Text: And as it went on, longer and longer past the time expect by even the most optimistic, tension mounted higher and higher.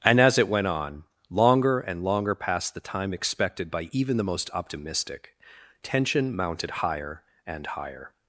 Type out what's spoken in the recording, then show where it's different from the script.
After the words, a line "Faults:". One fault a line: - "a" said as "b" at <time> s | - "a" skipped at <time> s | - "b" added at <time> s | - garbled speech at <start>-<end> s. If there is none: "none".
And as it went on, longer and longer past the time expected by even the most optimistic, tension mounted higher and higher.
Faults:
- "expect" said as "expected" at 3.1 s